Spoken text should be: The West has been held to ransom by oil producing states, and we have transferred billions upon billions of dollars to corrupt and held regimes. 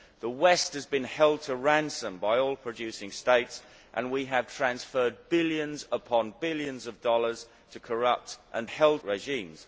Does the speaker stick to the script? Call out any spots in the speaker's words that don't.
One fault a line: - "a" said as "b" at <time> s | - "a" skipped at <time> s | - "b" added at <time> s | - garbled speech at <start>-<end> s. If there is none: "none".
none